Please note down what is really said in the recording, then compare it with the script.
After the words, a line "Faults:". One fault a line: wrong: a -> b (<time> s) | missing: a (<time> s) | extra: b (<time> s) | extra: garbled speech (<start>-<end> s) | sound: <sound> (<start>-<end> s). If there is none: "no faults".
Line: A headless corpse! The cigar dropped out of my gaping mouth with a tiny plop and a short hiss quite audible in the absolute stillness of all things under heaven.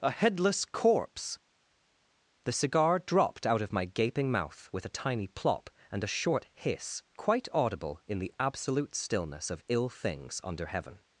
A headless corpse! The cigar dropped out of my gaping mouth with a tiny plop and a short hiss quite audible in the absolute stillness of ill things under heaven.
Faults:
wrong: all -> ill (9.7 s)